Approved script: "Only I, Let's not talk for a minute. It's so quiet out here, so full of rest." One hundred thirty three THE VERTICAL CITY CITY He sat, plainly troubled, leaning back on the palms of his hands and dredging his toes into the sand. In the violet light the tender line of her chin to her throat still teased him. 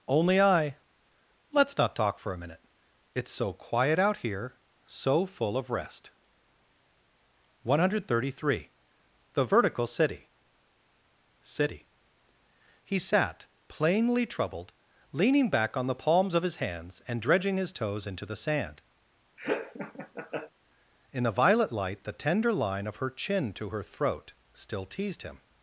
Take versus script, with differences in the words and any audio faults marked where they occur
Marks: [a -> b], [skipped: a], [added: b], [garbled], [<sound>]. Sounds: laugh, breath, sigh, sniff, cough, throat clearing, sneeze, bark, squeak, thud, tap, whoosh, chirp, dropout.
"Only I, Let's not talk for a minute. It's so quiet out here, so full of rest." One hundred thirty three THE VERTICAL CITY CITY He sat, plainly troubled, leaning back on the palms of his hands and dredging his toes into the sand. [laugh] In the violet light the tender line of her chin to her throat still teased him.